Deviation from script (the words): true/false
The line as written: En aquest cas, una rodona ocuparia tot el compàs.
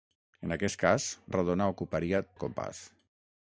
true